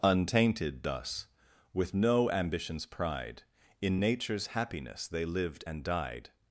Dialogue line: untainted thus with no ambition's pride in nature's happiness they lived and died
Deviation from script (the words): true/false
false